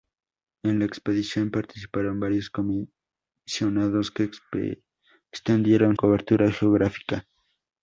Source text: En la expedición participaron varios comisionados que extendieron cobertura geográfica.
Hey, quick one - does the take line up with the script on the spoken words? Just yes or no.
yes